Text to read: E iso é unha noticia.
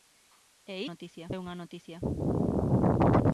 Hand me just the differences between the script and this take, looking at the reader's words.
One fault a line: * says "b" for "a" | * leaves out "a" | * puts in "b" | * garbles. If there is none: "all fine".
* says "noticia" for "iso"